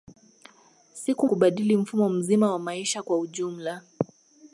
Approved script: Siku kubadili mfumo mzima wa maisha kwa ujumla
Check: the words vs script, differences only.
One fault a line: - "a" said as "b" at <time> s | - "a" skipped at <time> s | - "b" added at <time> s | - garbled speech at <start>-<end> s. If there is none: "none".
none